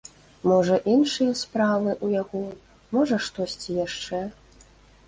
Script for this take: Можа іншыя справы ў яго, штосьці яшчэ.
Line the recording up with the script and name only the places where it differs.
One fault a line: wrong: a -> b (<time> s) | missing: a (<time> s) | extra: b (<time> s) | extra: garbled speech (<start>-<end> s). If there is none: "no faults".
extra: можа (3.0 s)